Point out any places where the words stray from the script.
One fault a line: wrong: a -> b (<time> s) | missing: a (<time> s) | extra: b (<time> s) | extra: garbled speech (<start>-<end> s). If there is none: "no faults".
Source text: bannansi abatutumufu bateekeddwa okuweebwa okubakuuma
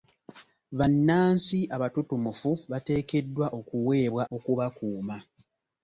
no faults